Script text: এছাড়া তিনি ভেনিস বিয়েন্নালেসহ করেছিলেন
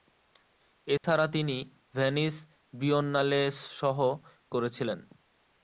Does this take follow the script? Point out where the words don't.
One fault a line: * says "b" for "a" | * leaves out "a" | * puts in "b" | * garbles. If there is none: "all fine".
all fine